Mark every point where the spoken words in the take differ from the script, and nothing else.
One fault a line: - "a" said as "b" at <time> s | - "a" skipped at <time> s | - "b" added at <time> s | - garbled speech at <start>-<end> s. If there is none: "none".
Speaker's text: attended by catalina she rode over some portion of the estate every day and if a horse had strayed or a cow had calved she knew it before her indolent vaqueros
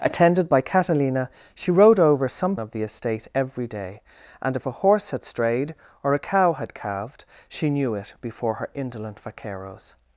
- "portion" skipped at 2.6 s